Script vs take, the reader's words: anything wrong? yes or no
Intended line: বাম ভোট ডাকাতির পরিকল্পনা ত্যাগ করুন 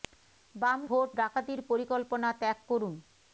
no